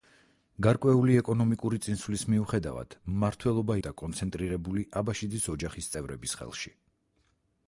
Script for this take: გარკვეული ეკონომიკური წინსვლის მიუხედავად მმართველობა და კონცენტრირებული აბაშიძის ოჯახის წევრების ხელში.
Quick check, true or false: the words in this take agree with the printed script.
true